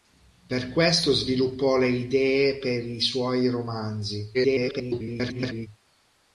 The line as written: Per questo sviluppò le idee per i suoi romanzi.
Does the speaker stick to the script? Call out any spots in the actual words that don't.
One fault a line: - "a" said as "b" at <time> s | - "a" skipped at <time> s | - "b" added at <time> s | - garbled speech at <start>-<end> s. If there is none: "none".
- garbled speech at 4.3-5.7 s